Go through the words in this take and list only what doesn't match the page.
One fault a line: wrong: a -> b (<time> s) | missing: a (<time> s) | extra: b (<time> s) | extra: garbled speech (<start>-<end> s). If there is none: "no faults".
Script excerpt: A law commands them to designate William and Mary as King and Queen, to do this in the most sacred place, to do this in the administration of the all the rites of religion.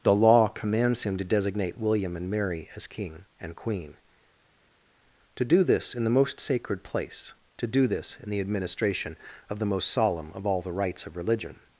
wrong: A -> The (0.0 s)
wrong: them -> him (1.0 s)
extra: most solemn of (9.6 s)